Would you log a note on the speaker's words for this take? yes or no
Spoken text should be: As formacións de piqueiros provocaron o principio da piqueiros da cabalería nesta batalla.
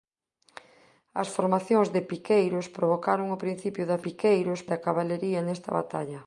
no